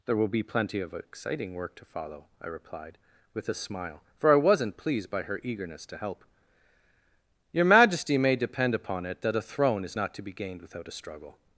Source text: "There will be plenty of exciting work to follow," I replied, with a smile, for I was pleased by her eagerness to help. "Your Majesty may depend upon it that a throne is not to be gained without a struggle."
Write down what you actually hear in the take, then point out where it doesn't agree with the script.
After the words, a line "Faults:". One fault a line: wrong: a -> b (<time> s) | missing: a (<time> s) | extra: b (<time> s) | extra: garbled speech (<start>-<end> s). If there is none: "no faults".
"There will be plenty of exciting work to follow," I replied, with a smile, for I wasn't pleased by her eagerness to help. "Your Majesty may depend upon it that a throne is not to be gained without a struggle."
Faults:
wrong: was -> wasn't (4.3 s)